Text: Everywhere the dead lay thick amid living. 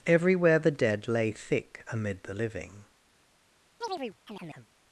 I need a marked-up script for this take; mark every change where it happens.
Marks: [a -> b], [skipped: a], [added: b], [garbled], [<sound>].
Everywhere the dead lay thick amid [added: the] living. [chirp]